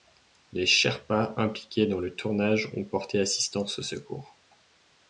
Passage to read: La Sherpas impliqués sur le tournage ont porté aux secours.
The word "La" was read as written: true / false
false